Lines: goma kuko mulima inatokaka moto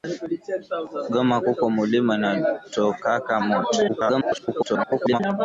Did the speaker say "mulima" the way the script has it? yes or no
yes